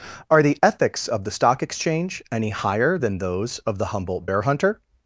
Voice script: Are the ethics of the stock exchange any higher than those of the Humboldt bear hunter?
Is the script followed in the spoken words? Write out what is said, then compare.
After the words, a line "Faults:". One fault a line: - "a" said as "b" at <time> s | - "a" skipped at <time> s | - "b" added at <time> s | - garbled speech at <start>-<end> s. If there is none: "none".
Are the ethics of the stock exchange any higher than those of the Humboldt bear hunter?
Faults:
none